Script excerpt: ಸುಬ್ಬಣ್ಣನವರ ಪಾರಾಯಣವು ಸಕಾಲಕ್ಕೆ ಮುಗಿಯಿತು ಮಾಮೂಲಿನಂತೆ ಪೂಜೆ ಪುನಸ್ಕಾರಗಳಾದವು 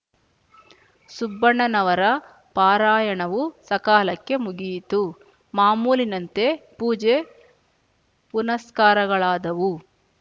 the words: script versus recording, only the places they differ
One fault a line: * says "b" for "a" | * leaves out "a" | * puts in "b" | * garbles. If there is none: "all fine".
all fine